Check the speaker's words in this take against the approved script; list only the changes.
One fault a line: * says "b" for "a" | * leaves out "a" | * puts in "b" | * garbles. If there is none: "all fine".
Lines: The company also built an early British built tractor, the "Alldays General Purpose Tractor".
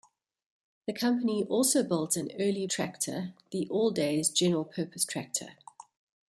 * leaves out "British built"